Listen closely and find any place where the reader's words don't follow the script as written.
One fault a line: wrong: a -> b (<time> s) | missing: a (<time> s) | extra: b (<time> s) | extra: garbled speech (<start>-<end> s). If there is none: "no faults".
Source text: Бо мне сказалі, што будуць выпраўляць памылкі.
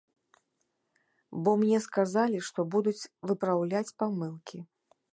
no faults